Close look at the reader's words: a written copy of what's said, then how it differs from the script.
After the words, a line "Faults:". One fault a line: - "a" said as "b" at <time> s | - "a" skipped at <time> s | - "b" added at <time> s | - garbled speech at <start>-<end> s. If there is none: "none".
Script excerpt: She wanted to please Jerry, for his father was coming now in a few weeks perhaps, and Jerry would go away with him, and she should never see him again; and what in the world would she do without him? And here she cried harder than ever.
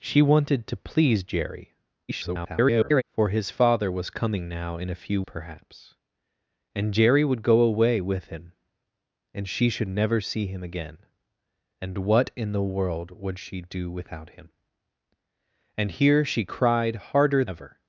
She wanted to please Jerry, [garbled] for his father was coming now in a few perhaps, and Jerry would go away with him, and she should never see him again; and what in the world would she do without him? And here she cried harder ever.
Faults:
- garbled speech at 2.1-3.0 s
- "weeks" skipped at 5.2 s
- "than" skipped at 17.4 s